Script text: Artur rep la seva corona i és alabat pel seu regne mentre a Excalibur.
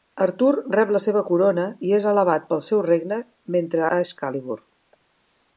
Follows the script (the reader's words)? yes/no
yes